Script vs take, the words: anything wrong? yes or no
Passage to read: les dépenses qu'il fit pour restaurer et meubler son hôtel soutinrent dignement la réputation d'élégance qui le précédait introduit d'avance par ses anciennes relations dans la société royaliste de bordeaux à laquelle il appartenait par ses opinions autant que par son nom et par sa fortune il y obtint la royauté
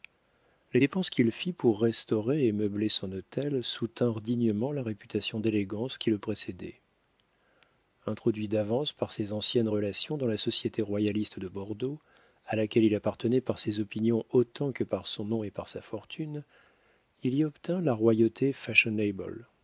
no